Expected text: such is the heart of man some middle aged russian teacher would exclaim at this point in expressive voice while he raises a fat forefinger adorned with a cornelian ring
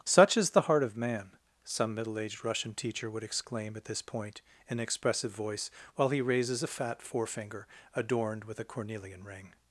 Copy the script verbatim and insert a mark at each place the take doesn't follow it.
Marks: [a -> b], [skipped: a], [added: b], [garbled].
such is the heart of man some middle aged russian teacher would exclaim at this point in expressive voice while he raises a fat forefinger adorned with a cornelian ring